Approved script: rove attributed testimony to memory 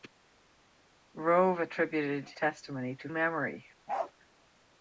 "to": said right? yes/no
yes